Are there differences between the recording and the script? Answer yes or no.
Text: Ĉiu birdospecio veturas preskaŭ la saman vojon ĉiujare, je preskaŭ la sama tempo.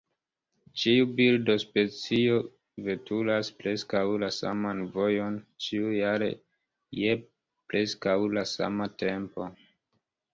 no